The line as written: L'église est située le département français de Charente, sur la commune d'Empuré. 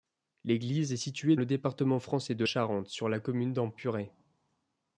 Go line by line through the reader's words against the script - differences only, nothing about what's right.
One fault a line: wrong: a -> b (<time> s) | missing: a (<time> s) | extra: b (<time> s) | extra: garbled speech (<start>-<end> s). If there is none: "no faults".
no faults